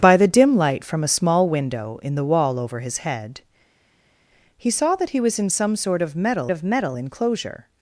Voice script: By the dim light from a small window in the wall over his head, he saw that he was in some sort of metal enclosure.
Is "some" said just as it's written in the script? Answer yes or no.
yes